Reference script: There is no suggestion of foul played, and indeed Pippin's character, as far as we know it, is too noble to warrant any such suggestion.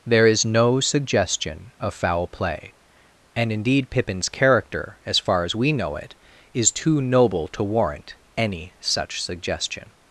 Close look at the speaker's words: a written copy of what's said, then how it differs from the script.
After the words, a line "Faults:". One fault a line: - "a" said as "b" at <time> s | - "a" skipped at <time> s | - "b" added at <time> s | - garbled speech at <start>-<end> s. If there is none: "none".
There is no suggestion of foul play, and indeed Pippin's character, as far as we know it, is too noble to warrant any such suggestion.
Faults:
- "played" said as "play" at 2.3 s